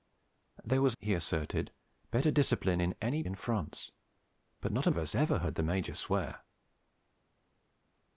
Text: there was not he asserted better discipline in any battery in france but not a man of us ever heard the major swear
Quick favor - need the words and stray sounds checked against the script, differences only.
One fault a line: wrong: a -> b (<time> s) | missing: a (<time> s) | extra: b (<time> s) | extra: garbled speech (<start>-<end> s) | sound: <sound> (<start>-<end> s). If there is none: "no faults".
missing: not (1.0 s)
missing: battery (3.2 s)
missing: man (4.9 s)